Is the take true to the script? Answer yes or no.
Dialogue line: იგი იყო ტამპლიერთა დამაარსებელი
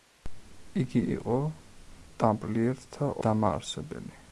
yes